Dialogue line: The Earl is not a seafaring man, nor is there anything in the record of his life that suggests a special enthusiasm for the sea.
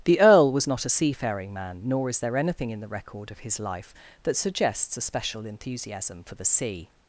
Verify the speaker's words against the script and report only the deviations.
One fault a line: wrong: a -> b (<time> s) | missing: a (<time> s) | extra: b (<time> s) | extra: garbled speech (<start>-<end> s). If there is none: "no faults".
wrong: is -> was (0.5 s)